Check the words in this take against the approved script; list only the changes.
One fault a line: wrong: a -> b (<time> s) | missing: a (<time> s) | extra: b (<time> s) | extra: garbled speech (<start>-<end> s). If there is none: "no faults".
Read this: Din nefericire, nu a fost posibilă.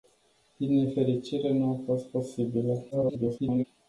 extra: garbled speech (2.9-3.6 s)